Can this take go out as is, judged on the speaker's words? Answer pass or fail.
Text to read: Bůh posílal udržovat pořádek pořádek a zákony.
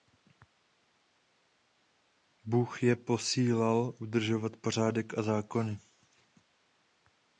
fail